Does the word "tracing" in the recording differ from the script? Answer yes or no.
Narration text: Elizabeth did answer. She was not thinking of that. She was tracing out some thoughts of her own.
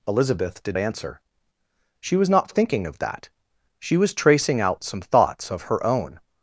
no